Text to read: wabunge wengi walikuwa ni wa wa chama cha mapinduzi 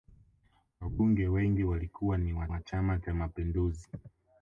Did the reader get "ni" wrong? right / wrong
right